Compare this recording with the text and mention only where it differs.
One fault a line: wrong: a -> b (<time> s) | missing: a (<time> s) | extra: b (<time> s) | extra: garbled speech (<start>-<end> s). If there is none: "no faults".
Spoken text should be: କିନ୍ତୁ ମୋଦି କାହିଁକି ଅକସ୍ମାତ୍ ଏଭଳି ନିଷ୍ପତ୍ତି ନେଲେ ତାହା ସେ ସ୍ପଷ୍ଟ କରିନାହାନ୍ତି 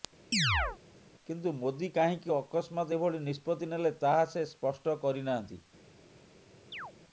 no faults